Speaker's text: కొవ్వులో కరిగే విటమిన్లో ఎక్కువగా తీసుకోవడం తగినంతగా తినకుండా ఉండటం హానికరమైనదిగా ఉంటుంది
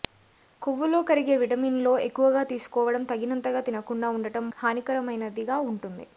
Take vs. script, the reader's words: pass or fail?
pass